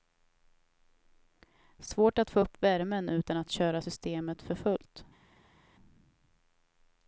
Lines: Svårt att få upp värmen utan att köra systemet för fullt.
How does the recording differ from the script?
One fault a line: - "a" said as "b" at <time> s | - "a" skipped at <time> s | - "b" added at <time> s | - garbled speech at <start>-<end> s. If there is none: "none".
none